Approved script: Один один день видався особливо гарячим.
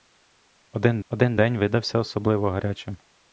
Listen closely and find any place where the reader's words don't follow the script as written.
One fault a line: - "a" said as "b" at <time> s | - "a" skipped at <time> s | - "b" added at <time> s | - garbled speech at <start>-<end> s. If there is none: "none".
none